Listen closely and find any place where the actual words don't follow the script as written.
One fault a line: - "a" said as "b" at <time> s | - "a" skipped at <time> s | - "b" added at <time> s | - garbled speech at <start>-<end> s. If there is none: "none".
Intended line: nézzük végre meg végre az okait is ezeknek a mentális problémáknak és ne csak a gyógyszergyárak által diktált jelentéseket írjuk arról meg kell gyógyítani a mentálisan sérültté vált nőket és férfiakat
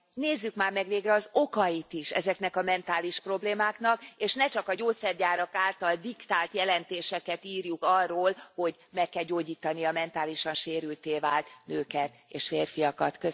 - "végre" said as "már" at 0.6 s
- "hogy" added at 8.5 s